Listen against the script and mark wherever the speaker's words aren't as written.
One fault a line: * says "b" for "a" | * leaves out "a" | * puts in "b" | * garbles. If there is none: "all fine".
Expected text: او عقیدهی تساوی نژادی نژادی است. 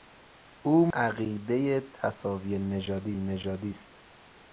all fine